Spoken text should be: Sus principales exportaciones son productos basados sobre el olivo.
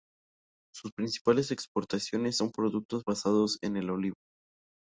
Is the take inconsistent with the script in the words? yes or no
yes